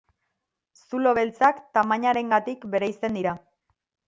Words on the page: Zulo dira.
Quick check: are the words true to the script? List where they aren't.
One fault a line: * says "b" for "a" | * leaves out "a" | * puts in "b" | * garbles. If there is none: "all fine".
* puts in "beltzak tamainarengatik bereizten"